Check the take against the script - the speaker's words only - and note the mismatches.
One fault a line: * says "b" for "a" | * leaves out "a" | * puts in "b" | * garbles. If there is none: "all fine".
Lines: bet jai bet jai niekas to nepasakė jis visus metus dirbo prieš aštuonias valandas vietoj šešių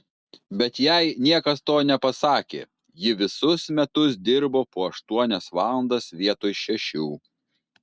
* leaves out "bet jai"
* says "ji" for "jis"
* says "po" for "prieš"